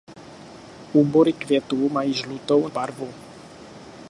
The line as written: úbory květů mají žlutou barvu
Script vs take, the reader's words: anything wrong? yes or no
no